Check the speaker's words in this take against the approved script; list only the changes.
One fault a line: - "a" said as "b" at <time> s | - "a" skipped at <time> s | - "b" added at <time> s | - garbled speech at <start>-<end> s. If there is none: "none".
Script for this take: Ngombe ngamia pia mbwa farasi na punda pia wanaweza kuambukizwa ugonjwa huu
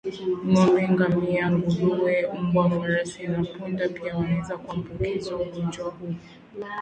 - "pia" said as "nguruwe" at 1.5 s